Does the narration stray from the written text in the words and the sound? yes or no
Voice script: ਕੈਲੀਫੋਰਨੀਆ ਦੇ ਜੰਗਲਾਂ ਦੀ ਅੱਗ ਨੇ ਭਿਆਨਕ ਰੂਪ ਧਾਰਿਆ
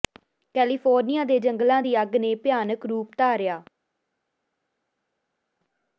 no